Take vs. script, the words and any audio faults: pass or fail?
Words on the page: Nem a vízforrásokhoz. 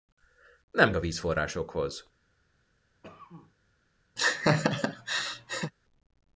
fail